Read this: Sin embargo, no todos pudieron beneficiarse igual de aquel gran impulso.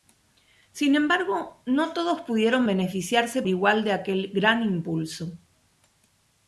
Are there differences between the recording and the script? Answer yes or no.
no